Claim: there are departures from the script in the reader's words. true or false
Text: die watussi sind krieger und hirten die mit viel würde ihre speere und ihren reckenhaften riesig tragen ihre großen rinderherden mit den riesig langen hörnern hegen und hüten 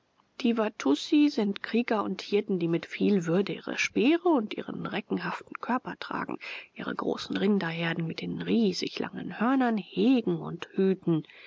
true